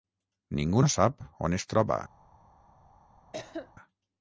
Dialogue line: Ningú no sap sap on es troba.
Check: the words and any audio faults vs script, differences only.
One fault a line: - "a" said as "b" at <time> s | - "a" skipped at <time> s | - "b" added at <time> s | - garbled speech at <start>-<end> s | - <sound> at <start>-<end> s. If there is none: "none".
- "sap" skipped at 1.2 s
- cough at 3.3-3.7 s